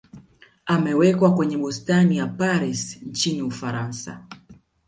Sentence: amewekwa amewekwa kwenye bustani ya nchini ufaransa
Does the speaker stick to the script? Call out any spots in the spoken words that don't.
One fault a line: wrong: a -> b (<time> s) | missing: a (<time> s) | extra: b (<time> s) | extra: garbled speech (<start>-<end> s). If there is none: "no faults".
missing: amewekwa (1.4 s)
extra: paris (2.3 s)